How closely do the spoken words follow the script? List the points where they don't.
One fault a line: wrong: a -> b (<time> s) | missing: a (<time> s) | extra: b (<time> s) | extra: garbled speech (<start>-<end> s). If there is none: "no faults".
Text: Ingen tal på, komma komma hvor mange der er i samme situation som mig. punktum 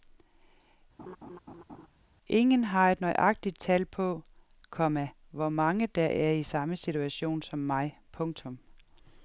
extra: har et nøjagtigt (2.6 s)
missing: komma (5.1 s)